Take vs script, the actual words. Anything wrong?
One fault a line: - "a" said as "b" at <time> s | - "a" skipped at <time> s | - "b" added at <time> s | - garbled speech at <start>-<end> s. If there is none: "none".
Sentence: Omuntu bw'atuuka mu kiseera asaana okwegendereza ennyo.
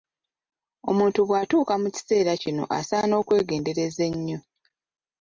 - "kino" added at 2.4 s